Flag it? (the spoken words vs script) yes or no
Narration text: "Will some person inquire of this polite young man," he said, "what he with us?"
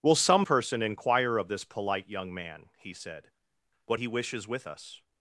yes